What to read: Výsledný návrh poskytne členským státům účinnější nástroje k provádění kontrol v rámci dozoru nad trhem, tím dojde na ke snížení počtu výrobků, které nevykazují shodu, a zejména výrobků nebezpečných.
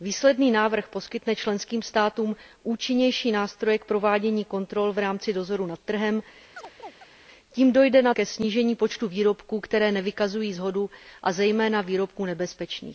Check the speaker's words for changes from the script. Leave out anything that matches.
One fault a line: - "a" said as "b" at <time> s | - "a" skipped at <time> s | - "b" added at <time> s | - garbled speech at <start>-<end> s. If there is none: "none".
none